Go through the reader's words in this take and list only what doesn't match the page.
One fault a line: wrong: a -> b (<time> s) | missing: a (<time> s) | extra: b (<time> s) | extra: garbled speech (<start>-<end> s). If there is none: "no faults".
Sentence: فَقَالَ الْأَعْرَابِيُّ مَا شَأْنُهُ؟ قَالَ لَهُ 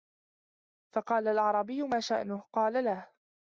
no faults